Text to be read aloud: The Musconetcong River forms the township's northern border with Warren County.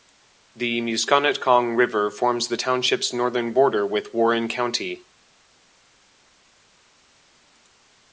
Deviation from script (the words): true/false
false